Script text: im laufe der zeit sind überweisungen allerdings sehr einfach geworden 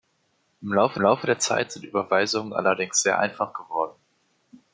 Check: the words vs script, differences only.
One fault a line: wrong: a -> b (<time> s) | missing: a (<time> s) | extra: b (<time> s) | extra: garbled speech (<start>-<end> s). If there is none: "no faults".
extra: laufe (1.0 s)